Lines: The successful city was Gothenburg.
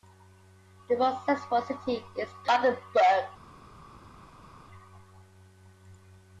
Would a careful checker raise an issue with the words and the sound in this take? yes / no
yes